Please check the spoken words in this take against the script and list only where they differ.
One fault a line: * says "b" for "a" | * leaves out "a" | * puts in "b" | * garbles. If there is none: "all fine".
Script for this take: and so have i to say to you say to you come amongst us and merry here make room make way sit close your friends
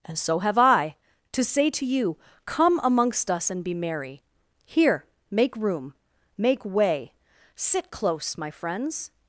* leaves out "say to you"
* puts in "be"
* says "my" for "your"